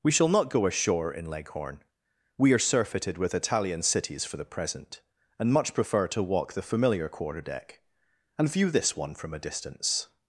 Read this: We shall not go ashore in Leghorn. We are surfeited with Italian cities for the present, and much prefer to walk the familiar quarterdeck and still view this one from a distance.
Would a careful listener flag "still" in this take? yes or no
yes